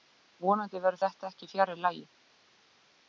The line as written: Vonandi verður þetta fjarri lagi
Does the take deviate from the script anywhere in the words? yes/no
yes